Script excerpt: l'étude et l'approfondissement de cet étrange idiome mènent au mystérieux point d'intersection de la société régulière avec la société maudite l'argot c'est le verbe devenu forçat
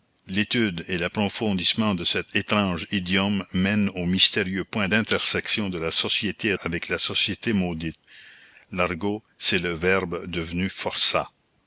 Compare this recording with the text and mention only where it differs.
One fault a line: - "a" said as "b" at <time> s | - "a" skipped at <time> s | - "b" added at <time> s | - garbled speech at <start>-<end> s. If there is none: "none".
- "régulière" skipped at 6.5 s